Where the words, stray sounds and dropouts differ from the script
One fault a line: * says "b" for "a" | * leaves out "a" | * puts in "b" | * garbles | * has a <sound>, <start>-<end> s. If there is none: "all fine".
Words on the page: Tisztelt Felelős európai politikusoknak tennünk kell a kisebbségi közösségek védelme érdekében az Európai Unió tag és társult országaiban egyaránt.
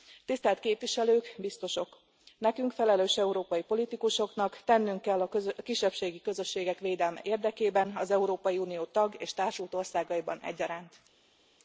* puts in "Képviselők Biztosok Nekünk"